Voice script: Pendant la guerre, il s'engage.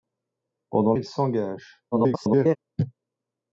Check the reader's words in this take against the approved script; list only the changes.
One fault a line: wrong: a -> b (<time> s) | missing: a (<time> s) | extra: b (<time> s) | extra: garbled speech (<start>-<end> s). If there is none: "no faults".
missing: la guerre (0.9 s)
extra: garbled speech (1.9-2.6 s)